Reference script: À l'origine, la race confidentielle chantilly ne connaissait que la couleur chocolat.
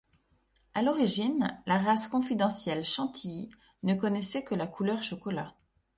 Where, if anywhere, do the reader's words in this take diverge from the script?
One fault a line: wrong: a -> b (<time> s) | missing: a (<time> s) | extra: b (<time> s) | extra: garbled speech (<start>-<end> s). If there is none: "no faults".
no faults